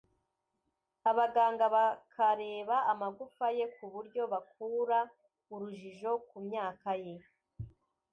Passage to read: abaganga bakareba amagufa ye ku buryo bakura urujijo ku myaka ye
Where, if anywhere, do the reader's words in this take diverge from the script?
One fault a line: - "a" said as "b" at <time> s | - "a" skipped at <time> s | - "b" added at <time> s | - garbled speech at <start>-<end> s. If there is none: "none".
none